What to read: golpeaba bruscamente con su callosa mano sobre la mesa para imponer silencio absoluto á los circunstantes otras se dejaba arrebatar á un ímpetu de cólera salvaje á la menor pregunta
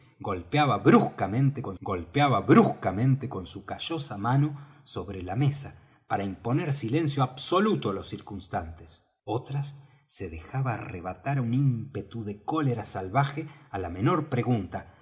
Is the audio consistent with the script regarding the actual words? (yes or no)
no